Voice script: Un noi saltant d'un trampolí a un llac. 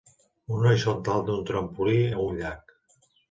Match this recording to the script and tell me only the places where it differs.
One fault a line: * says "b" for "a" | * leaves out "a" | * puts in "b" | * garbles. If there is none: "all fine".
all fine